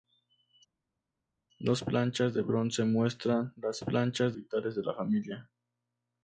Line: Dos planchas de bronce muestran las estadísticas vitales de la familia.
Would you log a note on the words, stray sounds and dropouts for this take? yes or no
yes